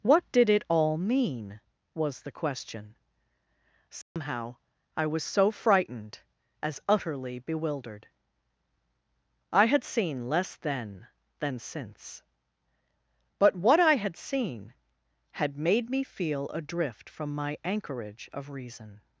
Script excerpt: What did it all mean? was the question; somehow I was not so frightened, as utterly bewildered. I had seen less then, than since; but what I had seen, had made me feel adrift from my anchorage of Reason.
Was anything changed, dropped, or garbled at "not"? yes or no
yes